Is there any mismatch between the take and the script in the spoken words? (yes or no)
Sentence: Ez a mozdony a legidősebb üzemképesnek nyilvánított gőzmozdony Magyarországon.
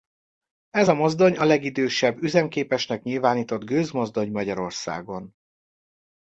no